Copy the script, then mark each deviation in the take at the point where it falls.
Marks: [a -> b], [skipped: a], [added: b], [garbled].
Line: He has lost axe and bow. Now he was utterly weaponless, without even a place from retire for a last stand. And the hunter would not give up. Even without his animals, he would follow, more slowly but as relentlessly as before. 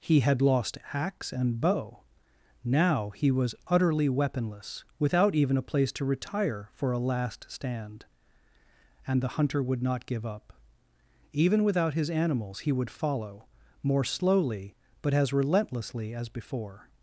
He [has -> had] lost axe and bow. Now he was utterly weaponless, without even a place [from -> to] retire for a last stand. And the hunter would not give up. Even without his animals, he would follow, more slowly but as relentlessly as before.